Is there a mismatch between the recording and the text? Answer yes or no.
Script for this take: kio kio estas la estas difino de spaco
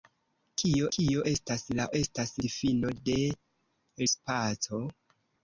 no